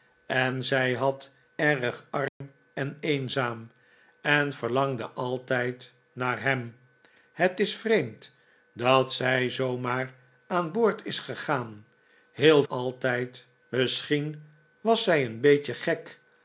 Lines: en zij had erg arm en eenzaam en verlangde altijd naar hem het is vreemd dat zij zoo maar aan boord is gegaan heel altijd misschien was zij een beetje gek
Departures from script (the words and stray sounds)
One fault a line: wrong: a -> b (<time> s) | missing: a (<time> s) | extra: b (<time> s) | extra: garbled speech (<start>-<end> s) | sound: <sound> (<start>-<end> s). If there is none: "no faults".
sound: dropout (2.3-2.4 s)